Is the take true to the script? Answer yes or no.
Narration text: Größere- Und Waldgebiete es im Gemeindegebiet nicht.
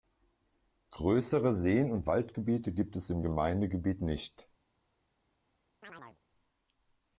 no